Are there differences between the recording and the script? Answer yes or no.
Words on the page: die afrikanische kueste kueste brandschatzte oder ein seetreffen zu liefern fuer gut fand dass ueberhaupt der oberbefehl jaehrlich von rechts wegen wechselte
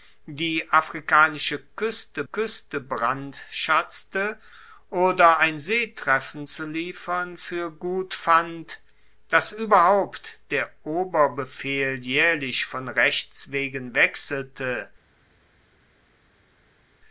no